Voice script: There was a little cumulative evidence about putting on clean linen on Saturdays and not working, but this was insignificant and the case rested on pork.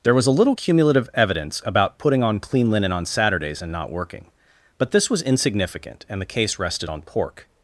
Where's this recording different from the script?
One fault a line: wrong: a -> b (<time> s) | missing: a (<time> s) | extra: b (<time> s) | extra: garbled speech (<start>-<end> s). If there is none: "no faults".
no faults